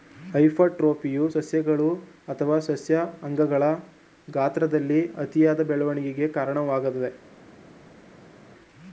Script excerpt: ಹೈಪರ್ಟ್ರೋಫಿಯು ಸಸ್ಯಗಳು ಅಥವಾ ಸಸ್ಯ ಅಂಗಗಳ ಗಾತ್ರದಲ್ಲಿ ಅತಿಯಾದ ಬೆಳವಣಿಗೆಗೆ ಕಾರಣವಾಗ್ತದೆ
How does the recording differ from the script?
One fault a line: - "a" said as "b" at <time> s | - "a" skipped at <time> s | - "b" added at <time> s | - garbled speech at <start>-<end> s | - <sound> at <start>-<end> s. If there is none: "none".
none